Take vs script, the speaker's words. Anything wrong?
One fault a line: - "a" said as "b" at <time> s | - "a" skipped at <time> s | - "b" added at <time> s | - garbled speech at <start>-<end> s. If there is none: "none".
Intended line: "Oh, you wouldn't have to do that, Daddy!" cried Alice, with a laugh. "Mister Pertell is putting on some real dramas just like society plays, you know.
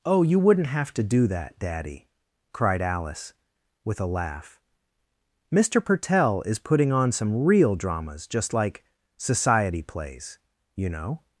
none